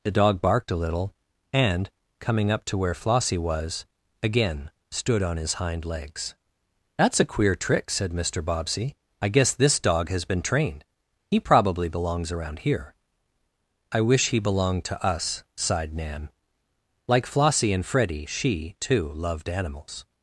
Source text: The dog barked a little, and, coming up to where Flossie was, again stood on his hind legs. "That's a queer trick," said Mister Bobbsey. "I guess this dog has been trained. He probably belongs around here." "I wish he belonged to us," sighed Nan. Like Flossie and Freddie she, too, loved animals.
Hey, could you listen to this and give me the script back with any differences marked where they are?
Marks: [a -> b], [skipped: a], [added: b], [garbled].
The dog barked a little, and, coming up to where Flossie was, again stood on his hind legs. "That's a queer trick," said Mister Bobbsey. "I guess this dog has been trained. He probably belongs around here." "I wish he belonged to us," sighed Nan. Like Flossie and Freddie she, too, loved animals.